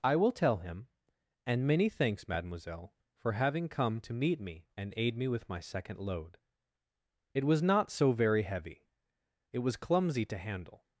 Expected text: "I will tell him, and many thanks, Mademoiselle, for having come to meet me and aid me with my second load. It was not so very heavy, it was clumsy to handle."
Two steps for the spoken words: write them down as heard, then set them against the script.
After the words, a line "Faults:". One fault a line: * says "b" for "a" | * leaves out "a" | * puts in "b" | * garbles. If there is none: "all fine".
"I will tell him, and many thanks, Mademoiselle, for having come to meet me and aid me with my second load. It was not so very heavy, it was clumsy to handle."
Faults:
all fine